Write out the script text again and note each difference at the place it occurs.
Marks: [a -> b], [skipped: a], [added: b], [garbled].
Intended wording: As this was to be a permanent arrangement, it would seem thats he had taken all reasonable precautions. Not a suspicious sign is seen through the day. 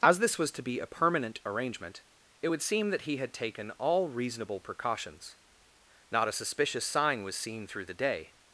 As this was to be a permanent arrangement, it would seem [thats -> that] he had taken all reasonable precautions. Not a suspicious sign [is -> was] seen through the day.